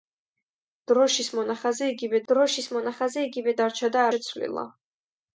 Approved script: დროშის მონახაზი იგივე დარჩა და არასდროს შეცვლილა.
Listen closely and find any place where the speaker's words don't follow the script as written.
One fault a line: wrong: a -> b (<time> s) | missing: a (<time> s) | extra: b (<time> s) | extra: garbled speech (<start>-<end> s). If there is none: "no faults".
extra: დროშის მონახაზი იგივე (2.3 s)
missing: არასდროს (4.1 s)